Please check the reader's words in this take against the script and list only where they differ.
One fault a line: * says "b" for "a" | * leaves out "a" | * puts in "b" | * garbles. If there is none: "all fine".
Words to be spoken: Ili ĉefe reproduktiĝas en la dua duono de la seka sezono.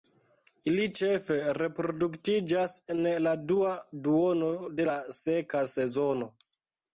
all fine